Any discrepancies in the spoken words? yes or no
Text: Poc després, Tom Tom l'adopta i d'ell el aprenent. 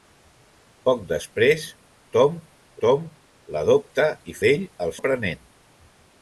no